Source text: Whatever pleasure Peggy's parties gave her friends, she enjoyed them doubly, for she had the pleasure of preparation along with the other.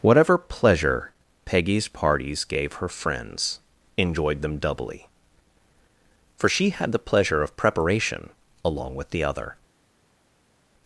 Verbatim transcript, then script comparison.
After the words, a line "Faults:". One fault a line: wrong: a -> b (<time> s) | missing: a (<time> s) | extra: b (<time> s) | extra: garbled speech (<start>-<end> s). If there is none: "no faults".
Whatever pleasure Peggy's parties gave her friends, enjoyed them doubly, for she had the pleasure of preparation along with the other.
Faults:
missing: she (3.6 s)